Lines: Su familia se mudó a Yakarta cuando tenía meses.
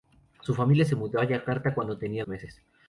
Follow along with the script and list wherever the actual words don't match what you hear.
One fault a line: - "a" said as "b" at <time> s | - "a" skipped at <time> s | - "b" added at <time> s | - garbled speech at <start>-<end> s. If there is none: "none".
none